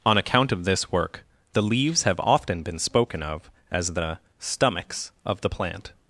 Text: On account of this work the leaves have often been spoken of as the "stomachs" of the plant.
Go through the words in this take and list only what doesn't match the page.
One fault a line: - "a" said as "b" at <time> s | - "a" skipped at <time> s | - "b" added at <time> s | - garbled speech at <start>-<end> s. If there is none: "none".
none